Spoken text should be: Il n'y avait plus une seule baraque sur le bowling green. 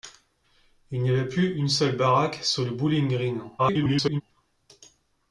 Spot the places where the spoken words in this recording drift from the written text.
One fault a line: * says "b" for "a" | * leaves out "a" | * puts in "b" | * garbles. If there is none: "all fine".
* garbles